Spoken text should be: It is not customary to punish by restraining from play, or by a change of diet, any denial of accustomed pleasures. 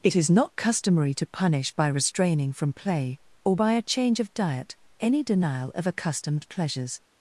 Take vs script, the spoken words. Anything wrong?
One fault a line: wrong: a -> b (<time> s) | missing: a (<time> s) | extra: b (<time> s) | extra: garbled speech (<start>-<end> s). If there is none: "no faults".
no faults